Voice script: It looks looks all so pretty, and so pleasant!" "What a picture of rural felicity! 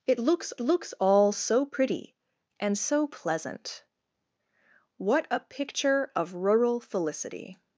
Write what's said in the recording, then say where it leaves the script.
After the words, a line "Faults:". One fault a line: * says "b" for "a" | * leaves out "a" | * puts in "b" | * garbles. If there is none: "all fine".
It looks looks all so pretty, and so pleasant!" "What a picture of rural felicity!
Faults:
all fine